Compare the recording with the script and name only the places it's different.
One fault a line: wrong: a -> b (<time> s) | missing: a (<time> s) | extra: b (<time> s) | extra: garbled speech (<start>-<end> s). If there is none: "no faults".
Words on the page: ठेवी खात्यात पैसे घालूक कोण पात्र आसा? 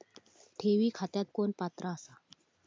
missing: पैसे घालूक (1.3 s)